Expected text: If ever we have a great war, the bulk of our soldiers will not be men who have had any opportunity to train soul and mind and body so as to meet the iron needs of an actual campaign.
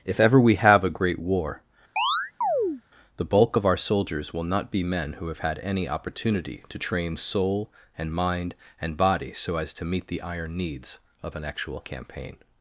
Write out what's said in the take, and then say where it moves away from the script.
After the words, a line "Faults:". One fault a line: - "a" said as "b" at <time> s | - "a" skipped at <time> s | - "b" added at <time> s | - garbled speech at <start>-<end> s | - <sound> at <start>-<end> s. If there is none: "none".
If ever we have a great war, the bulk of our soldiers will not be men who have had any opportunity to train soul and mind and body so as to meet the iron needs of an actual campaign.
Faults:
- chirp at 2.0-2.8 s